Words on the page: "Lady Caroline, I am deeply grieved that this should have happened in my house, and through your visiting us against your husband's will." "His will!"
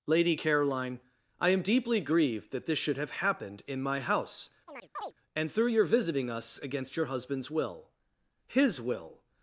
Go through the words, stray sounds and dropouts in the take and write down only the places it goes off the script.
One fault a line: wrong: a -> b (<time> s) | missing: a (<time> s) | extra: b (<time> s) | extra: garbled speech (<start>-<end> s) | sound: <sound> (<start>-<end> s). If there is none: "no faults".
sound: chirp (4.7-5.1 s)